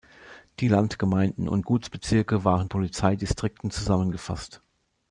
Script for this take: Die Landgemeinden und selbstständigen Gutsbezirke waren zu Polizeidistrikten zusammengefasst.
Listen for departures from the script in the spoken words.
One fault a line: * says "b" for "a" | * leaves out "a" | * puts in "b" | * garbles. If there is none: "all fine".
* leaves out "selbstständigen"
* leaves out "zu"